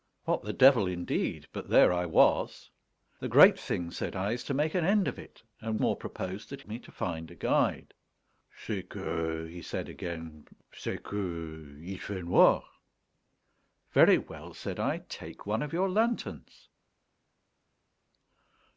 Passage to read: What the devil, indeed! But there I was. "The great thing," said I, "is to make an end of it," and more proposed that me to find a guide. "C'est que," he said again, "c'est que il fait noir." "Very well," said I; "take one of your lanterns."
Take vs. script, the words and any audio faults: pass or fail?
pass